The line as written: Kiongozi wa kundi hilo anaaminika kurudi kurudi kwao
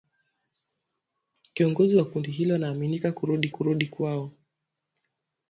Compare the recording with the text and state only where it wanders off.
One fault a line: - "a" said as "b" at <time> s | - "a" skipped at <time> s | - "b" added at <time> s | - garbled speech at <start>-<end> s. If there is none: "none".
none